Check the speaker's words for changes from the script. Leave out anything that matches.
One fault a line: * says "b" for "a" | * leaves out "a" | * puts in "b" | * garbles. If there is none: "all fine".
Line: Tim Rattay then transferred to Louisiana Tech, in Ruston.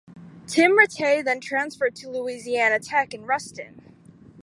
all fine